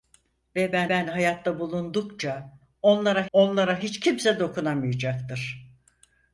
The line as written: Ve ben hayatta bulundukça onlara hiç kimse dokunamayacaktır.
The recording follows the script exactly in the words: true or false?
false